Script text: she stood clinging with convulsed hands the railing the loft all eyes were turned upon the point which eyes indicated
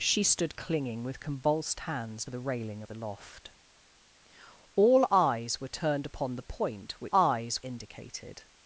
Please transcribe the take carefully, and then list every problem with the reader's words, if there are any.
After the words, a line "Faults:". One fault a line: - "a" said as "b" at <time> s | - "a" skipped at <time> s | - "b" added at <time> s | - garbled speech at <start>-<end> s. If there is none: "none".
she stood clinging with convulsed hands the railing the loft all eyes were turned upon the point which eyes indicated
Faults:
none